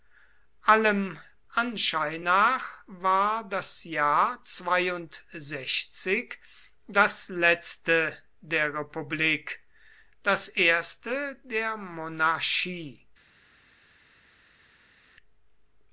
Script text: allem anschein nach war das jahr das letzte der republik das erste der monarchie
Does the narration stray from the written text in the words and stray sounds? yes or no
no